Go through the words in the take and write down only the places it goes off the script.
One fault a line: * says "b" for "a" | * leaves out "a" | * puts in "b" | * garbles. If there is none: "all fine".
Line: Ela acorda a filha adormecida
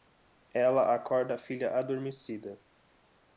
all fine